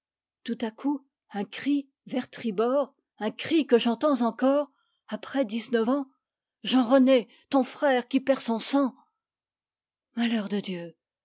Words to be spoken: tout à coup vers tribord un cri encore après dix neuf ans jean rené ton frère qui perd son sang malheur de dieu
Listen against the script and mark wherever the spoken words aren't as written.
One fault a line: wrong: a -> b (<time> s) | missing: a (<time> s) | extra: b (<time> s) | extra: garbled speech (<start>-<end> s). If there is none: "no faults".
extra: un cri (1.3 s)
extra: que j'entends (3.7 s)